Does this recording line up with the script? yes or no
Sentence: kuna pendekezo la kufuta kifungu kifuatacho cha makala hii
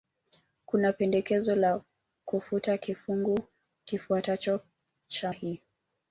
no